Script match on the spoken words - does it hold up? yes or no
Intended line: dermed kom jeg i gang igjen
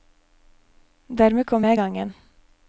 yes